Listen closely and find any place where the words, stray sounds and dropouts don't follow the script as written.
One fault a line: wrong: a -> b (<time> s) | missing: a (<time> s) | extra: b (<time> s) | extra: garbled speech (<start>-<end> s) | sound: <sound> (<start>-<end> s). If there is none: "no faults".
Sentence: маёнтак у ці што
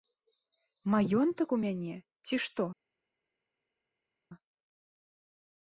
extra: мяне (1.6 s)